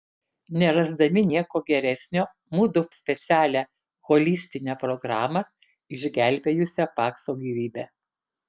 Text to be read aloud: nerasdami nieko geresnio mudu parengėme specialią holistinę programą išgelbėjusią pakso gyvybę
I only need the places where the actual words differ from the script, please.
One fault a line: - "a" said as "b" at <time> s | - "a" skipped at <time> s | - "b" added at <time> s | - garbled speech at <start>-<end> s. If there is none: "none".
- "parengėme" skipped at 2.8 s